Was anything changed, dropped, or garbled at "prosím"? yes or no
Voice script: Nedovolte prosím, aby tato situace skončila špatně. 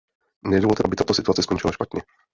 yes